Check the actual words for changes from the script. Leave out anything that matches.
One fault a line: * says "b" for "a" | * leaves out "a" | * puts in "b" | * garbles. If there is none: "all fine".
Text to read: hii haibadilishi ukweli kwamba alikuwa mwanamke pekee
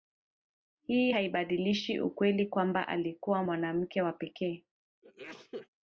* puts in "wa"